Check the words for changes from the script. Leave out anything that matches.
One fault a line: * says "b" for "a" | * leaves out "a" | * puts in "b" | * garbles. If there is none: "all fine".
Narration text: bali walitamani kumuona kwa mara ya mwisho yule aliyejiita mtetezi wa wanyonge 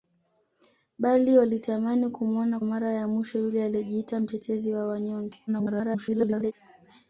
* leaves out "kwa"
* garbles